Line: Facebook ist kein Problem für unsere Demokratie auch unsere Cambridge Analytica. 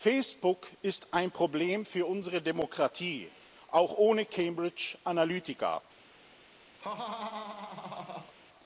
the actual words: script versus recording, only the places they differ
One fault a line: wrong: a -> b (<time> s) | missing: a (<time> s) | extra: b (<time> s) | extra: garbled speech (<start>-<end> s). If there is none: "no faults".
wrong: kein -> ein (1.1 s)
wrong: unsere -> ohne (4.0 s)